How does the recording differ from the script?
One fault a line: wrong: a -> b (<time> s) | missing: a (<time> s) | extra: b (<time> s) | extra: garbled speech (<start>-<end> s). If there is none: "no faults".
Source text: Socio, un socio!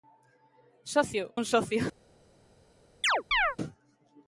no faults